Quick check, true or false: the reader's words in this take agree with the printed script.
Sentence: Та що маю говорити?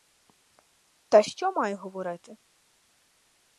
true